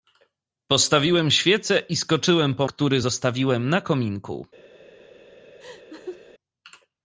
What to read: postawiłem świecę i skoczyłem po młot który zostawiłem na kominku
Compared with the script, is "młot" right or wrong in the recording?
wrong